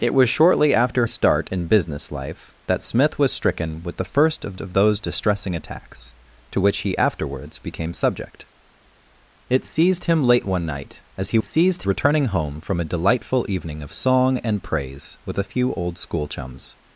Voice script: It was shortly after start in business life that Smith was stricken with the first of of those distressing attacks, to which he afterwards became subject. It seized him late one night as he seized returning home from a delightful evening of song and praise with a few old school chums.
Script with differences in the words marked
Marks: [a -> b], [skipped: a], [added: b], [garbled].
It was shortly after start in business life that Smith was stricken with the first of of those distressing attacks, to which he afterwards became subject. It seized him late one night as he seized returning home from a delightful evening of song and praise with a few old school chums.